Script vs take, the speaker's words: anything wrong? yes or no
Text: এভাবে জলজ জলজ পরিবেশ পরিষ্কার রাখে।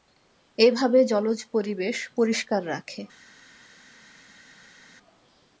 yes